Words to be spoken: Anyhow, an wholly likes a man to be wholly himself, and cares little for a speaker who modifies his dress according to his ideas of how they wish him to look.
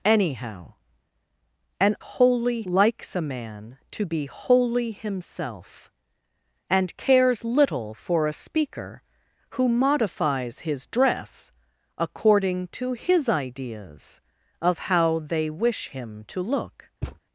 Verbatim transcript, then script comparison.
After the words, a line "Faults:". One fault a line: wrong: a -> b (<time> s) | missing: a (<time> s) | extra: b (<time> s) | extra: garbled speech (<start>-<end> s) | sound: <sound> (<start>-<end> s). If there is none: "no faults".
Anyhow, an wholly likes a man to be wholly himself, and cares little for a speaker who modifies his dress according to his ideas of how they wish him to look.
Faults:
sound: thud (17.0-17.2 s)